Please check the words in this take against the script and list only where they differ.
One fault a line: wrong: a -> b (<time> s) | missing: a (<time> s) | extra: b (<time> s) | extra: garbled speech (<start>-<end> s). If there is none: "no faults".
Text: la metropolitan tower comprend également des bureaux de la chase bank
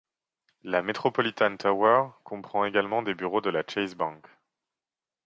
no faults